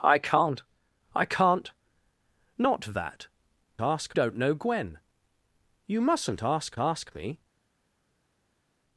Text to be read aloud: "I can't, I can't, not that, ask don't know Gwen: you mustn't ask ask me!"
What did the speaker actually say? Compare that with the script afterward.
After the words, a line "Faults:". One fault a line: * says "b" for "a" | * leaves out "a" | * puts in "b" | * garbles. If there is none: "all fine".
"I can't, I can't, not that, ask don't know Gwen: you mustn't ask ask me!"
Faults:
all fine